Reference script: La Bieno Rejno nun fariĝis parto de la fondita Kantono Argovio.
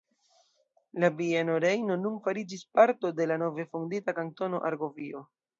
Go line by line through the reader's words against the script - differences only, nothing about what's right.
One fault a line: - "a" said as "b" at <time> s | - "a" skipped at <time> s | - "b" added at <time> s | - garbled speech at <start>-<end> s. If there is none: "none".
- "nove" added at 3.5 s